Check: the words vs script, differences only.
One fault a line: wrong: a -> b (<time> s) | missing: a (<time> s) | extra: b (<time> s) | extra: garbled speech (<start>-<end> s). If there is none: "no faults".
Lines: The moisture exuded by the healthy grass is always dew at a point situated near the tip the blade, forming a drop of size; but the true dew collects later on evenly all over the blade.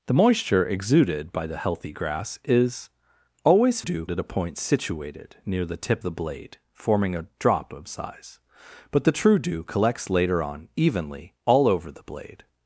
no faults